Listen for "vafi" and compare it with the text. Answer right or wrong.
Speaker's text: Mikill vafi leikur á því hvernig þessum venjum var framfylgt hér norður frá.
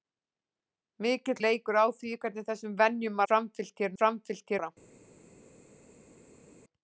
wrong